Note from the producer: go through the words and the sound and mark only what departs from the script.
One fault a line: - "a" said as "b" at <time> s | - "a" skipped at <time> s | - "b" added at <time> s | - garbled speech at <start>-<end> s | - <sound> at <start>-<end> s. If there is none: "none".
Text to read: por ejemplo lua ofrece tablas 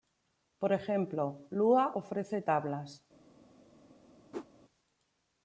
- whoosh at 4.3-4.5 s